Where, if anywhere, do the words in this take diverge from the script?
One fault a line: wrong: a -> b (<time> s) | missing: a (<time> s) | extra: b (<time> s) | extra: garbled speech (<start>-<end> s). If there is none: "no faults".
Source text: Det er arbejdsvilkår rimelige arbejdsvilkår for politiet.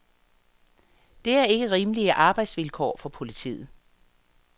wrong: arbejdsvilkår -> ikke (1.4 s)